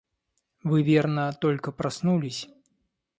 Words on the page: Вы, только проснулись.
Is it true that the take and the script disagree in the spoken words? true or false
true